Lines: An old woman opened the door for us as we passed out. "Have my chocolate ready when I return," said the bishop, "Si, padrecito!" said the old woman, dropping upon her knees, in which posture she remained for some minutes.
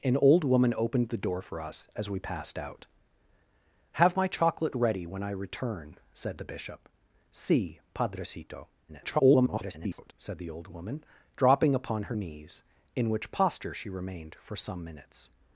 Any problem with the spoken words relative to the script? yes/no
yes